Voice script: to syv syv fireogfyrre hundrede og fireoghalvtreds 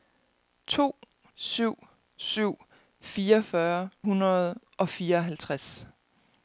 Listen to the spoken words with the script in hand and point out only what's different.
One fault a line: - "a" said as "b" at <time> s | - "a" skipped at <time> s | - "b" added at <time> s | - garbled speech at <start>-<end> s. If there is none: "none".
none